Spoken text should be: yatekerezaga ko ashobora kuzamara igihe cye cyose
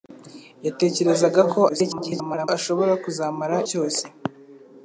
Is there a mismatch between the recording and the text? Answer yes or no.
yes